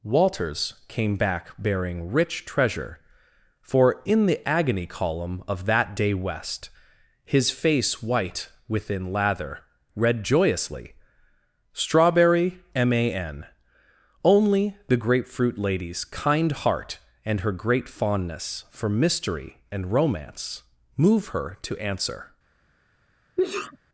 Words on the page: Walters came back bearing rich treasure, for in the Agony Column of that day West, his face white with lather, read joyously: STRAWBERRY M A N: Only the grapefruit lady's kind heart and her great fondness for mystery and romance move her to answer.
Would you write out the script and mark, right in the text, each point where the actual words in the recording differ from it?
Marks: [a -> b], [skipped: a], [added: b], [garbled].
Walters came back bearing rich treasure, for in the Agony Column of that day West, his face white [with -> within] lather, read joyously: STRAWBERRY M A N: Only the grapefruit lady's kind heart and her great fondness for mystery and romance move her to answer.